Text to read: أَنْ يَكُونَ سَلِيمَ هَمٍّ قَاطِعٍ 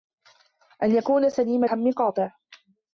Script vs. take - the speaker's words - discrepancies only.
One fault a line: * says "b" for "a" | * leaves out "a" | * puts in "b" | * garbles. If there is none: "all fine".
all fine